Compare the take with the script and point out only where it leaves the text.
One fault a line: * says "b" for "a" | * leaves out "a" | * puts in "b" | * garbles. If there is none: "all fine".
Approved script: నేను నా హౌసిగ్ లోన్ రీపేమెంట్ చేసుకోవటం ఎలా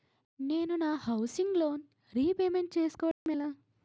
all fine